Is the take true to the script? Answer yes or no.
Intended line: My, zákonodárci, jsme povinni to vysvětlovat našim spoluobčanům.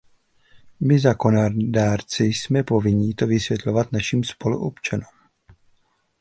yes